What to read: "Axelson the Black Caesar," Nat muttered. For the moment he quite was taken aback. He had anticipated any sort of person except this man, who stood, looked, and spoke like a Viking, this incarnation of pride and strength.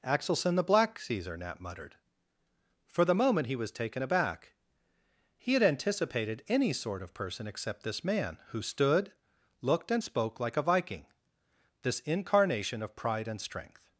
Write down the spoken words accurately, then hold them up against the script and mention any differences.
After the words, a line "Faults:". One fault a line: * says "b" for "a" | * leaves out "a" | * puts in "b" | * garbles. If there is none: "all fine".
"Axelson the Black Caesar," Nat muttered. For the moment he was taken aback. He had anticipated any sort of person except this man, who stood, looked, and spoke like a Viking, this incarnation of pride and strength.
Faults:
* leaves out "quite"